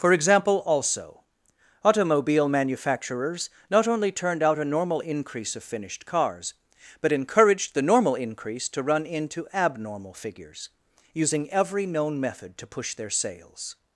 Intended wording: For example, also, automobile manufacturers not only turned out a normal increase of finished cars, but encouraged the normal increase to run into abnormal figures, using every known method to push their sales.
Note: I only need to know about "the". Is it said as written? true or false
true